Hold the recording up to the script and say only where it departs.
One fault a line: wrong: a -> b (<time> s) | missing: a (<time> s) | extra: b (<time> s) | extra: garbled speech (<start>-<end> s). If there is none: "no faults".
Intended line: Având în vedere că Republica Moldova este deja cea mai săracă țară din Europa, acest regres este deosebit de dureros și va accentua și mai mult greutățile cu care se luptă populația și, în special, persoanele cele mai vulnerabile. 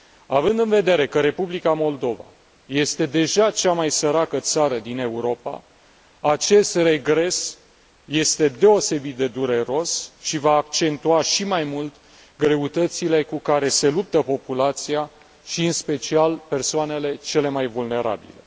no faults